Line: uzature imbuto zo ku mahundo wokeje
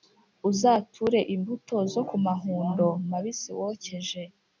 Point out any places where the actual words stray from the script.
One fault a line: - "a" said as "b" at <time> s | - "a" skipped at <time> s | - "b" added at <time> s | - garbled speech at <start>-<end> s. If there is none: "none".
- "mabisi" added at 3.1 s